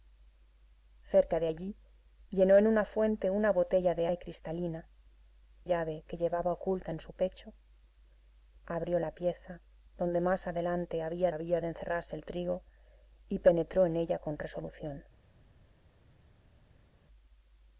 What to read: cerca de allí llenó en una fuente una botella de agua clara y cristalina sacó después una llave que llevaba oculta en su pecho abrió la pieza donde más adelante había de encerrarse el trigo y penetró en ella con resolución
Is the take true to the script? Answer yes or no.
no